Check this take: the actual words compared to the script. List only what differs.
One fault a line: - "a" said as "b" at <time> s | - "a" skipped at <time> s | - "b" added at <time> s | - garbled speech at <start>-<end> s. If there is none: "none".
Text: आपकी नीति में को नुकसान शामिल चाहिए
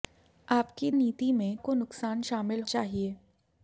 none